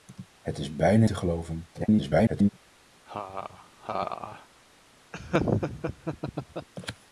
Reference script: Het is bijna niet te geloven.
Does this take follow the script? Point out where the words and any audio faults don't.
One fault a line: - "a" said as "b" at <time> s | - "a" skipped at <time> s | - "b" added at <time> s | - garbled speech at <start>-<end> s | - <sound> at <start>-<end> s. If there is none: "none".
- "niet" skipped at 1.1 s
- garbled speech at 1.7-2.5 s
- laugh at 3.1-4.5 s
- laugh at 5.1-6.7 s